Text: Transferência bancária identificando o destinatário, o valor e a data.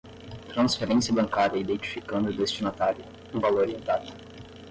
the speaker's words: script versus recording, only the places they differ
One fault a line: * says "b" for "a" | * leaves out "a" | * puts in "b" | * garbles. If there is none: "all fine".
all fine